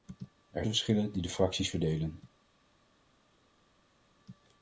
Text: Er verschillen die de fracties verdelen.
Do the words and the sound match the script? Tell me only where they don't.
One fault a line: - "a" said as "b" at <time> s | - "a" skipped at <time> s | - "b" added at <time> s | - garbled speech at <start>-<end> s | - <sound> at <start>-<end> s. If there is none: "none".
none